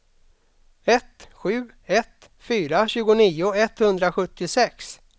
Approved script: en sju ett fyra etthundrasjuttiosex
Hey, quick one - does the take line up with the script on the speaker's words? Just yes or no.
no